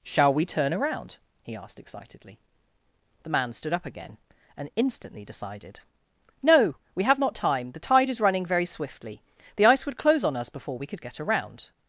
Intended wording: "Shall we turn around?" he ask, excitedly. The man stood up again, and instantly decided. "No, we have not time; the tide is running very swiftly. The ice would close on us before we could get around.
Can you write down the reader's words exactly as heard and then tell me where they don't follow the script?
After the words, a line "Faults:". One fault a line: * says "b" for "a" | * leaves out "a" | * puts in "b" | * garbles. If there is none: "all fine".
"Shall we turn around?" he asked, excitedly. The man stood up again, and instantly decided. "No, we have not time; the tide is running very swiftly. The ice would close on us before we could get around.
Faults:
* says "asked" for "ask"